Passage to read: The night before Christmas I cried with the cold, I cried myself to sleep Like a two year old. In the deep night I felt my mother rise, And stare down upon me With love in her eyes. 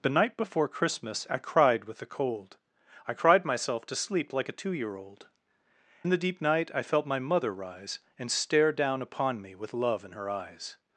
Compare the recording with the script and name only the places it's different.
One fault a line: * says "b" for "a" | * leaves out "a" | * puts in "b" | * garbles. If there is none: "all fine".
all fine